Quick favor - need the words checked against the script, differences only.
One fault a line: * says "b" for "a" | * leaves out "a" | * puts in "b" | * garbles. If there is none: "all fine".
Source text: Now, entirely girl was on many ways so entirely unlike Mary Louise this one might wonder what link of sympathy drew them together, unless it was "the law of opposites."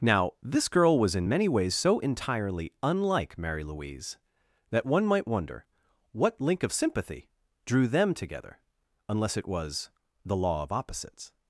* says "this" for "entirely"
* says "in" for "on"
* says "that" for "this"